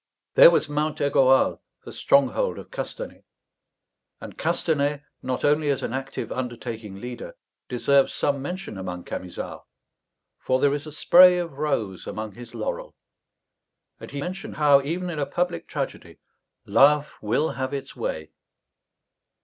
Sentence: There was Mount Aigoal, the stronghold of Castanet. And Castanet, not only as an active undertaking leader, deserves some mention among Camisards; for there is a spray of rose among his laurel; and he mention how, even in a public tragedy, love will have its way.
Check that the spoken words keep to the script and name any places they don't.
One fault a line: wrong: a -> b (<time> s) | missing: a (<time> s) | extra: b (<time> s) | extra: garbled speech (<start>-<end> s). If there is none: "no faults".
no faults